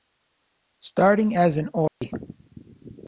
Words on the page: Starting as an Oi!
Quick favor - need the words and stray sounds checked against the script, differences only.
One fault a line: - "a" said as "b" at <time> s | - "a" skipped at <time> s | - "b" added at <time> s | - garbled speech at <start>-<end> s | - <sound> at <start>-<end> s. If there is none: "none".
- dropout at 1.9-2.0 s